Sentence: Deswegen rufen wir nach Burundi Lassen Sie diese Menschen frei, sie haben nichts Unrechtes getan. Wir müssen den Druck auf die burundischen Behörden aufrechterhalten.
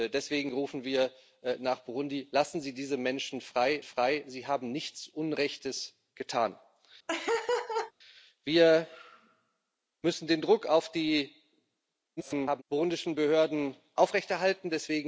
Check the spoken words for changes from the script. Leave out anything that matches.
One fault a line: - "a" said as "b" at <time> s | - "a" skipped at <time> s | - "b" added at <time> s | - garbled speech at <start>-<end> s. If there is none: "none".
- "frei" added at 3.8 s
- garbled speech at 12.2-12.6 s